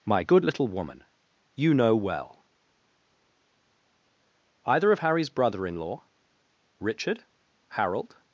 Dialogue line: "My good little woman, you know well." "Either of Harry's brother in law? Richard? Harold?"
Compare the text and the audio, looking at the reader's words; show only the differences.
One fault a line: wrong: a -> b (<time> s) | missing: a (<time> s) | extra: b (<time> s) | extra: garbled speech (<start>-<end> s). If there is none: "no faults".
no faults